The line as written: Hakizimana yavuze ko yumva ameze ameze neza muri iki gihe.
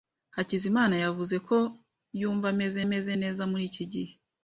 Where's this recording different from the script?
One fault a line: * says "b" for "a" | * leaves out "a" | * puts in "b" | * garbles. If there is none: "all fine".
all fine